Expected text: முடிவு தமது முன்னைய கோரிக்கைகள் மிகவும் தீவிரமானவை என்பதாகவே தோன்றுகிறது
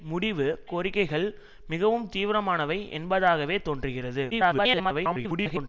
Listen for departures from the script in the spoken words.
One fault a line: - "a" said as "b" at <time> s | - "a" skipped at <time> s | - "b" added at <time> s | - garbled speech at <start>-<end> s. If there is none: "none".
- "தமது முன்னைய" skipped at 0.5 s
- garbled speech at 4.3-5.7 s